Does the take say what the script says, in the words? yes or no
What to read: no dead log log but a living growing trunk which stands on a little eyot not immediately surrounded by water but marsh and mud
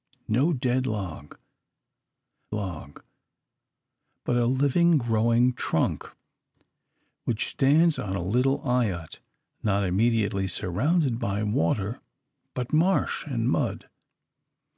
yes